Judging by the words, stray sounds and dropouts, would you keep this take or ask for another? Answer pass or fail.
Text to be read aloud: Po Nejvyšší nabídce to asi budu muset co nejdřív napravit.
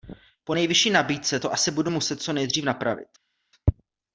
pass